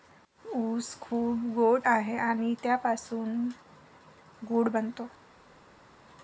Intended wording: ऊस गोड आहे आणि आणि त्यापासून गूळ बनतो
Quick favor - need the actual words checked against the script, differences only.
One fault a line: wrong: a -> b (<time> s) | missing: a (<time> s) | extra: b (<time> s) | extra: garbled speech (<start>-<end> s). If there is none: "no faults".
extra: खूप (1.0 s)
missing: आणि (2.5 s)